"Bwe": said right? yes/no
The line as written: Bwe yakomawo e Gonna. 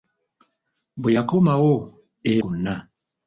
yes